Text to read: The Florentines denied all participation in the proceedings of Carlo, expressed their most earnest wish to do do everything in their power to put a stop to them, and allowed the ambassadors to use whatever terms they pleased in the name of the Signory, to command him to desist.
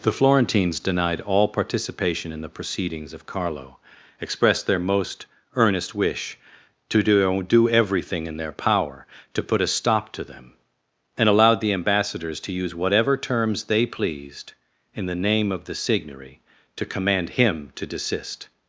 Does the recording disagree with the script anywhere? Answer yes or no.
no